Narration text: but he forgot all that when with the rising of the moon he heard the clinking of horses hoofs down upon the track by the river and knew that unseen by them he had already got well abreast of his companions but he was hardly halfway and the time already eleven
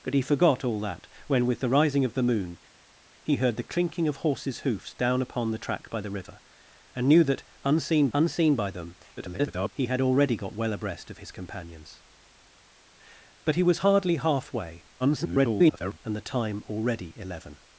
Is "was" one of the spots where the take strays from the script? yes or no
no